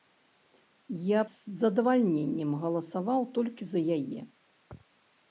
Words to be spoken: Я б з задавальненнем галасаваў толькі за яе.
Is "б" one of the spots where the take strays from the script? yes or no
yes